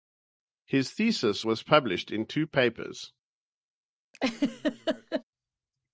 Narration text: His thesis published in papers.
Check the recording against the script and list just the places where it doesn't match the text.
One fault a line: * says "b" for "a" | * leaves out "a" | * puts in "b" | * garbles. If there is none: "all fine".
* puts in "was"
* puts in "two"